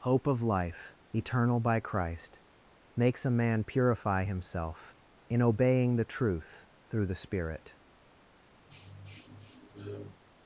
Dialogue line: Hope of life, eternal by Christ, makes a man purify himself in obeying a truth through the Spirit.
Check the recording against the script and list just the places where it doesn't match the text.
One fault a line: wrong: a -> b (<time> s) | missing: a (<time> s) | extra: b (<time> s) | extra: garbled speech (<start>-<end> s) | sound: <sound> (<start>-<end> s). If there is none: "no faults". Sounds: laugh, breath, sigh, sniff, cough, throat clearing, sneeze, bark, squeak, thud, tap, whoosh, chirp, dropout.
wrong: a -> the (6.0 s)
sound: sniff (8.7-10.2 s)